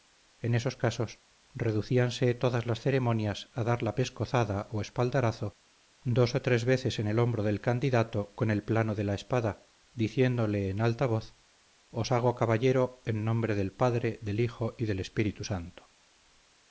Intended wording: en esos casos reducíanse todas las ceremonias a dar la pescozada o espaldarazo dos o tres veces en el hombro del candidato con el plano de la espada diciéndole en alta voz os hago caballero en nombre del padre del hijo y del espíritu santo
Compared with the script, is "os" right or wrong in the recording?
right